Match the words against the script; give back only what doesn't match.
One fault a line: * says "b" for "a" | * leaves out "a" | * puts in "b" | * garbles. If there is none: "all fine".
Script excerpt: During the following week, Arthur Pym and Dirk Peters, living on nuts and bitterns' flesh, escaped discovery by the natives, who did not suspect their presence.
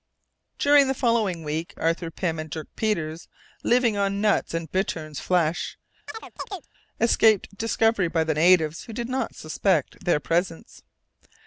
all fine